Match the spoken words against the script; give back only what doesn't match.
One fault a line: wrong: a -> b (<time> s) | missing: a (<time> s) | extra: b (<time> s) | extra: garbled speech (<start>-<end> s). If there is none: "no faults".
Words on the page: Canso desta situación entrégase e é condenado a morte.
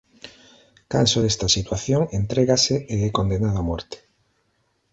no faults